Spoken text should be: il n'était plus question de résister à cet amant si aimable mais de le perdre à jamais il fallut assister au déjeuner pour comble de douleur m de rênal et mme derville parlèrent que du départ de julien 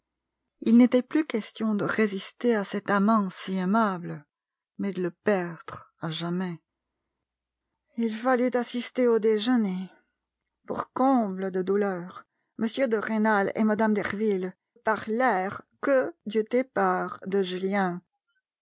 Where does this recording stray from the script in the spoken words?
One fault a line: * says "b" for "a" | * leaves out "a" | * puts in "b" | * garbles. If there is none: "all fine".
all fine